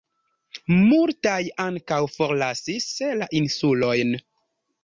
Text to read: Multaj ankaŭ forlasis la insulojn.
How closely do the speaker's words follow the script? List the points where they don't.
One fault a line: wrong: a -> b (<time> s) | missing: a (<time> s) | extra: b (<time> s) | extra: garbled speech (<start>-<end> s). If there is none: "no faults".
no faults